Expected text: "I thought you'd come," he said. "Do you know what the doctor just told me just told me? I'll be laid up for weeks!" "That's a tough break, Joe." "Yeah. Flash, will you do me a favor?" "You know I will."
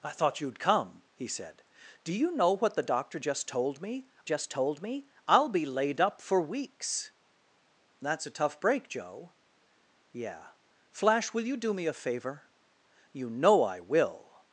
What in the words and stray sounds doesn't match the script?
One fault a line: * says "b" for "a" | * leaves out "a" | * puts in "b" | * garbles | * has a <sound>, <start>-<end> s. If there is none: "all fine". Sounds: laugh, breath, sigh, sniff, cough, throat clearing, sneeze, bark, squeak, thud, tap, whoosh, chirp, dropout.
all fine